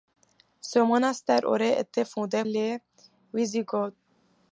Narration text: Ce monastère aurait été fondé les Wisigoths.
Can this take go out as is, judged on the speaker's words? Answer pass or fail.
pass